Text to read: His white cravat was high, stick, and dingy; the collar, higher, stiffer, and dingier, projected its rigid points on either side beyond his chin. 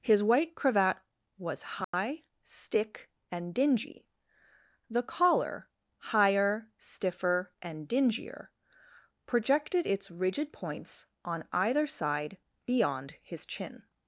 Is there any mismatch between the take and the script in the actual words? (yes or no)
no